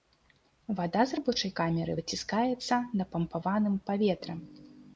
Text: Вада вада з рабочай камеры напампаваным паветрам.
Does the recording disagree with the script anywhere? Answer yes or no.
yes